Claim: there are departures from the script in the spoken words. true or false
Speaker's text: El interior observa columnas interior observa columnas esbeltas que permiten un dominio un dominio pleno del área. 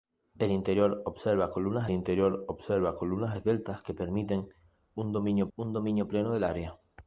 false